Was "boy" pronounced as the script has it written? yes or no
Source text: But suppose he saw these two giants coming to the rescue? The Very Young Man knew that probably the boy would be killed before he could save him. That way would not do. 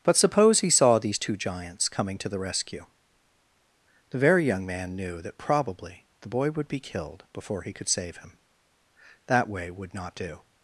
yes